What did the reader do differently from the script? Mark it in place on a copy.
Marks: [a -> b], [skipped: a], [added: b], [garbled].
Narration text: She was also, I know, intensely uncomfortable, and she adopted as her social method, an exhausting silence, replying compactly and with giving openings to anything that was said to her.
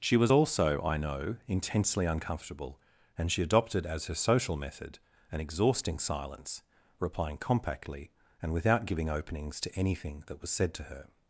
She was also, I know, intensely uncomfortable, and she adopted as her social method, an exhausting silence, replying compactly and [with -> without] giving openings to anything that was said to her.